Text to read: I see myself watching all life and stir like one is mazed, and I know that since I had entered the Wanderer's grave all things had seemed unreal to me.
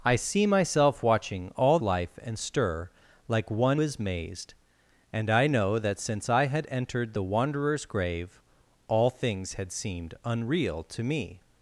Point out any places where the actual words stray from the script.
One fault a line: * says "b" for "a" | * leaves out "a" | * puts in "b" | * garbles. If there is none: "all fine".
all fine